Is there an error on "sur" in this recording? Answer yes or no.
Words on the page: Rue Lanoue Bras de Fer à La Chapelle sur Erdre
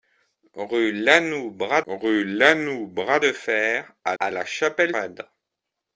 yes